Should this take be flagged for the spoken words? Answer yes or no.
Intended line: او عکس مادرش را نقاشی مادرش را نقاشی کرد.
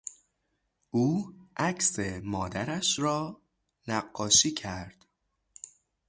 yes